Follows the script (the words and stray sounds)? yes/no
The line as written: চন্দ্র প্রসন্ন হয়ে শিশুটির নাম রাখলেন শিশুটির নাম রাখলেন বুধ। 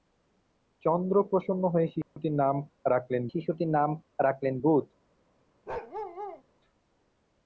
no